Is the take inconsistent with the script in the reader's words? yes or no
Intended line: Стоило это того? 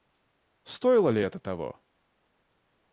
yes